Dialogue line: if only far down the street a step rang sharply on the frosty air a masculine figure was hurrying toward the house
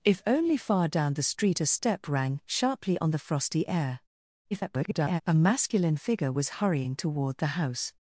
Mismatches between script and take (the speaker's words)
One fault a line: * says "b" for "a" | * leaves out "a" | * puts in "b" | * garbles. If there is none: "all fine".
* garbles